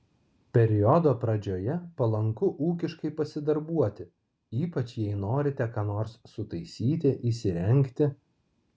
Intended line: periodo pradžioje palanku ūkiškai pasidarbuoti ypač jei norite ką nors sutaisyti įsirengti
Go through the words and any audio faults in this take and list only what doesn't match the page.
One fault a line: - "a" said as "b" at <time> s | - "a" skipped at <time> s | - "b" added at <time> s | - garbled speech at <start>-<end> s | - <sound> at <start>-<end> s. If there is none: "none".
none